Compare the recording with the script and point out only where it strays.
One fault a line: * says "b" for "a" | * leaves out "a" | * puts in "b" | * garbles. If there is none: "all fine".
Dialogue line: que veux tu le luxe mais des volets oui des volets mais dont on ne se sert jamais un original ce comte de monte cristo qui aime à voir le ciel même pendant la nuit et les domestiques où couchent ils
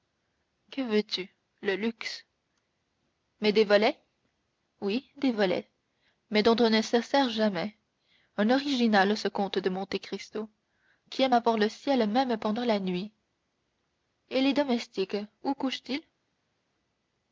all fine